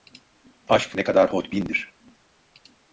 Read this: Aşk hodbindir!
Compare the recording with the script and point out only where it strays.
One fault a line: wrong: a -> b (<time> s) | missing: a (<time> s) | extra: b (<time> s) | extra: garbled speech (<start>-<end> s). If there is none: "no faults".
extra: ne kadar (0.9 s)